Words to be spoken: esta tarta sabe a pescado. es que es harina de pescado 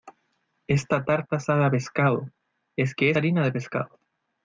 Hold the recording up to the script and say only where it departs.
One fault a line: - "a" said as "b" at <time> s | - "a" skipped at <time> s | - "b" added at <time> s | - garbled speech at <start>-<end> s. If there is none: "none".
none